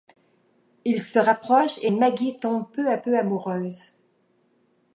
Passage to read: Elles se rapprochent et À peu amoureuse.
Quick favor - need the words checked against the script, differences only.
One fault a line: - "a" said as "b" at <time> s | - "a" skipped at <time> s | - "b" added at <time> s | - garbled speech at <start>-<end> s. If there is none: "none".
- "Elles" said as "Ils" at 0.8 s
- "Maggie tombe peu" added at 1.9 s